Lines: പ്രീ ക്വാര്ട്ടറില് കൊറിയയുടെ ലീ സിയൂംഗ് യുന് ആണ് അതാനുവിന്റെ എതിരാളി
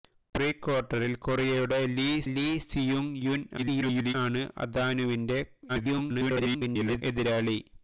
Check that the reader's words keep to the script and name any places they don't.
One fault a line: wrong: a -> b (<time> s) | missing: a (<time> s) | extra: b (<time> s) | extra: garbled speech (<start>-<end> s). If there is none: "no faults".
extra: ലീ (2.3 s)
extra: garbled speech (3.6-4.1 s)
extra: garbled speech (5.7-7.0 s)